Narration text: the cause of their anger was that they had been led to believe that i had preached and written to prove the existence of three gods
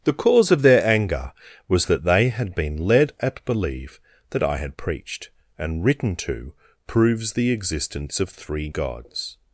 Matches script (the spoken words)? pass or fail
fail